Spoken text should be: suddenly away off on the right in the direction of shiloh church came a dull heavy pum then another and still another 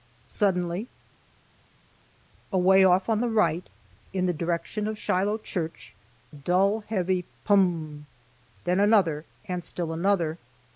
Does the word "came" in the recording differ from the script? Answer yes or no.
yes